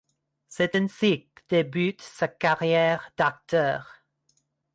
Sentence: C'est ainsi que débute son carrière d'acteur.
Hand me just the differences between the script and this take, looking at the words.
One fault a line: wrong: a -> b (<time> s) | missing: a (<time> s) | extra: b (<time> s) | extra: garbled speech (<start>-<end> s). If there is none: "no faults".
wrong: son -> sa (2.0 s)